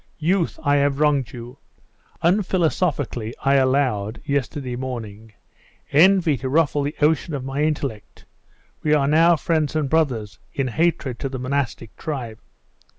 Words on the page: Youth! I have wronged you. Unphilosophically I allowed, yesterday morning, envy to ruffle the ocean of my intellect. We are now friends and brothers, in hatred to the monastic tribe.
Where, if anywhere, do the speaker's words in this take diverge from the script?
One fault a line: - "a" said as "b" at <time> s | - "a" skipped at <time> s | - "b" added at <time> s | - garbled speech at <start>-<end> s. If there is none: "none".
none